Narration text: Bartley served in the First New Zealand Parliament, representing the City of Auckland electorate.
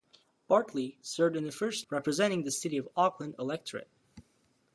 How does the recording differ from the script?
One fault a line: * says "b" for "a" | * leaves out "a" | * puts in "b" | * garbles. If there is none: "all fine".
* leaves out "New Zealand Parliament"